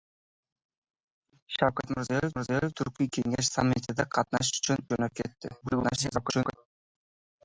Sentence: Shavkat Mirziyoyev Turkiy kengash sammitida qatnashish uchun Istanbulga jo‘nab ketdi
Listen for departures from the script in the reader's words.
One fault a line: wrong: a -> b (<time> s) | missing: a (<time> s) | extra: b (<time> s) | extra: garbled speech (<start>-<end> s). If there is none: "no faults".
extra: Mirziyoyev (2.4 s)
missing: Istanbulga (4.8 s)
extra: garbled speech (5.6-6.6 s)